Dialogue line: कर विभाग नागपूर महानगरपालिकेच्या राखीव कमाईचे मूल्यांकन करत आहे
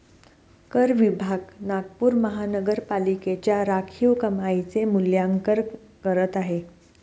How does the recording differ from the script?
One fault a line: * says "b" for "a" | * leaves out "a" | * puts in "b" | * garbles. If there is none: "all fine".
all fine